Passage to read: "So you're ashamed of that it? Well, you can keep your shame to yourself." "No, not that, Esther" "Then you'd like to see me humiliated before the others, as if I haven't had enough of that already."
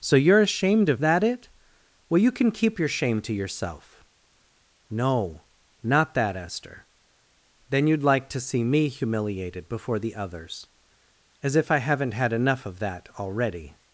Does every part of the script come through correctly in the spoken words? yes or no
yes